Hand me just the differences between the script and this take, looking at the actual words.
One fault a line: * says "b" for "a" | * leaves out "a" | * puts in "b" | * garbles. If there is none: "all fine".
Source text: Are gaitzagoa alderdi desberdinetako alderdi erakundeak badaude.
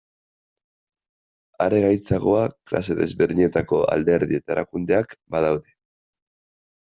* says "klase" for "alderdi"
* puts in "eta"